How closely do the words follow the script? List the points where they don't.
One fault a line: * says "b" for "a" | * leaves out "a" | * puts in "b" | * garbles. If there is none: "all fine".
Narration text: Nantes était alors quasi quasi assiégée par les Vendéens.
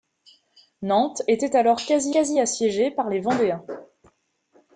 all fine